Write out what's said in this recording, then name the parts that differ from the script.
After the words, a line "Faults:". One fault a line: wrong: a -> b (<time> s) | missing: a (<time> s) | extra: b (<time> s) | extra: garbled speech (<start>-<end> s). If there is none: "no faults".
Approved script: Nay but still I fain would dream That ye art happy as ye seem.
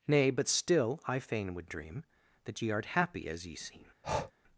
Nay but still I fain would dream That ye art happy as ye seem.
Faults:
no faults